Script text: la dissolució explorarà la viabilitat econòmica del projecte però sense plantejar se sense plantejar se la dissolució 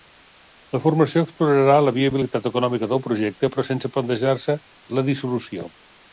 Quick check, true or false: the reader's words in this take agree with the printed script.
false